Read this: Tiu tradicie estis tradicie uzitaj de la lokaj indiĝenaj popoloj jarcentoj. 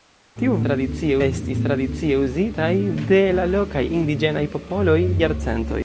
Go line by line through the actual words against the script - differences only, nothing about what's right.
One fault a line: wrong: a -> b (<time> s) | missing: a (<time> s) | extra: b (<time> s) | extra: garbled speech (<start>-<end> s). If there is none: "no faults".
no faults